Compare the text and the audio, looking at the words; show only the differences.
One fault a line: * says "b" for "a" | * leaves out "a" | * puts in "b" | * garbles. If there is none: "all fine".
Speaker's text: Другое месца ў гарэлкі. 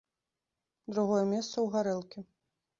all fine